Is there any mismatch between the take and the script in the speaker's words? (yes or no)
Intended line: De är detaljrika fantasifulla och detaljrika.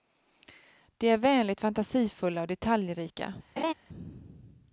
yes